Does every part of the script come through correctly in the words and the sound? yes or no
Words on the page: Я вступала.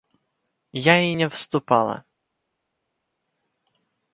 no